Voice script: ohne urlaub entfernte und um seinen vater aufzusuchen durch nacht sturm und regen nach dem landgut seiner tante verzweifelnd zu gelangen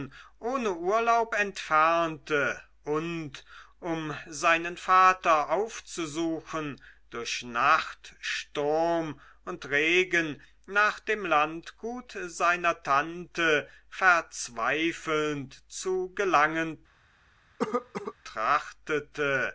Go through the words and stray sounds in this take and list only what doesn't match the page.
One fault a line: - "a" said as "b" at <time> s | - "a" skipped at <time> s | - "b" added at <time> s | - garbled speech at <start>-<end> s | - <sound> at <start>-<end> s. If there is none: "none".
- cough at 17.6-18.1 s